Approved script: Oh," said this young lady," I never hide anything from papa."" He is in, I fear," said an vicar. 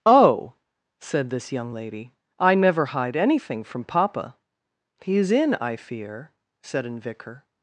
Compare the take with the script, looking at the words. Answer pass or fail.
pass